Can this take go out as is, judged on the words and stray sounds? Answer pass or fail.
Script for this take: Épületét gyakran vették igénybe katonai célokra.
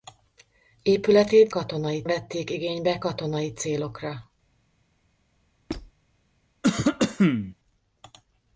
fail